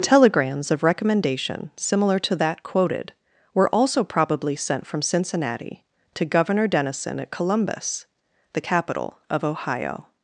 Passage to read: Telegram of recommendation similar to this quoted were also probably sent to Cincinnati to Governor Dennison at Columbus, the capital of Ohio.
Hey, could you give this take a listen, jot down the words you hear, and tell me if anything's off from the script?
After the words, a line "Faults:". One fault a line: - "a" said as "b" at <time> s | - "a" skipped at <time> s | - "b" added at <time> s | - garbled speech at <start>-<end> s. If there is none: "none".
Telegrams of recommendation similar to that quoted were also probably sent from Cincinnati to Governor Dennison at Columbus, the capital of Ohio.
Faults:
- "Telegram" said as "Telegrams" at 0.0 s
- "this" said as "that" at 2.4 s
- "to" said as "from" at 4.9 s